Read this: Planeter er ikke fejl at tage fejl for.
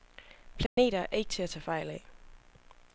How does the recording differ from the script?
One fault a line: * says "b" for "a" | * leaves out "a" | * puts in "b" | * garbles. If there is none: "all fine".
* says "til" for "fejl"
* says "af" for "for"